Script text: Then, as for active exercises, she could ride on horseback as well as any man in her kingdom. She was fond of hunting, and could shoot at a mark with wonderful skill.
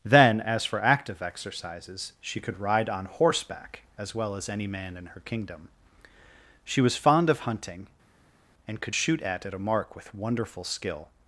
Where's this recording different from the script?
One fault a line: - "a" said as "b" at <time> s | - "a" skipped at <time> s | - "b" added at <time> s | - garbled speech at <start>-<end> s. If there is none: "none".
- "at" added at 9.5 s